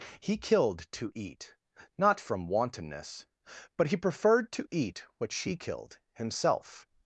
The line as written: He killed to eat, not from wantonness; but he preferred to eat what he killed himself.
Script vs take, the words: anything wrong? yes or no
yes